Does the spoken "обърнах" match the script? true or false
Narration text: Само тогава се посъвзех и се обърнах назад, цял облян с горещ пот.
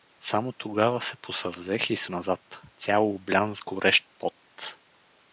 false